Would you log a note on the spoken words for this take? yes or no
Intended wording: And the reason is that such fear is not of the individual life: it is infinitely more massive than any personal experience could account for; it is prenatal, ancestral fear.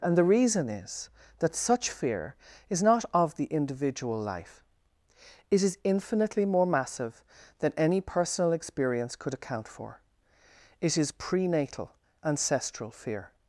no